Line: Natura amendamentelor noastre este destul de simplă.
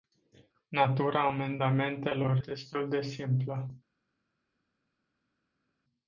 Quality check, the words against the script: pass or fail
fail